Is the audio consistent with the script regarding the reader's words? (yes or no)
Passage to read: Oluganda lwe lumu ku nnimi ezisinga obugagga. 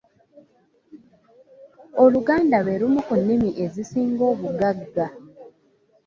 yes